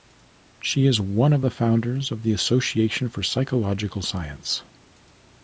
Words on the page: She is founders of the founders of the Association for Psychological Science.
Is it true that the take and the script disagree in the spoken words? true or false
true